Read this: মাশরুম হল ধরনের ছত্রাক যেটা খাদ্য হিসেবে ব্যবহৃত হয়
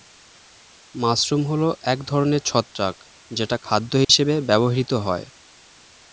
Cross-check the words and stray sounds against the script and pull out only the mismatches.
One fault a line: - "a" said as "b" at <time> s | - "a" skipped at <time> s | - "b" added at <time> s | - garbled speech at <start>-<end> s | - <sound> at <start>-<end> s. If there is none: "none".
- "এক" added at 1.8 s
- dropout at 4.0-4.1 s